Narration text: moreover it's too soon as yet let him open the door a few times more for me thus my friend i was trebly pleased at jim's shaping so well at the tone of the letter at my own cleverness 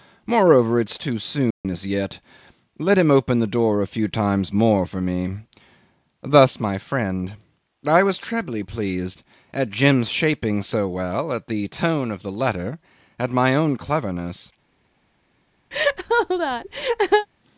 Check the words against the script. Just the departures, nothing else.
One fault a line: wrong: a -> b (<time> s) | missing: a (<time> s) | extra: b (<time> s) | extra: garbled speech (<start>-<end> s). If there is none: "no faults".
no faults